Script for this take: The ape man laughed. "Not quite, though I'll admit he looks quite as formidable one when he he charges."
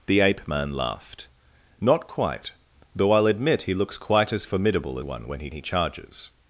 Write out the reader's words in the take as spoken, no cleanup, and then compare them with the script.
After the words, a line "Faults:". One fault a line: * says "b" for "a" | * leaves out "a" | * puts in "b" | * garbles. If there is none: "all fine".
The ape man laughed. "Not quite, though I'll admit he looks quite as formidable one when he he charges."
Faults:
all fine